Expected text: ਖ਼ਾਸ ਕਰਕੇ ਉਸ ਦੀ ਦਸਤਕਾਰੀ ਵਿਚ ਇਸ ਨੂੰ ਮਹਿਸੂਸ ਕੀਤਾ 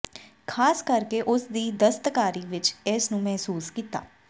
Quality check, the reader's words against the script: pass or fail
pass